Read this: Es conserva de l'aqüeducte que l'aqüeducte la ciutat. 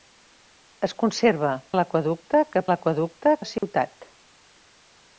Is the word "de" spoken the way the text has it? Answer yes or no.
yes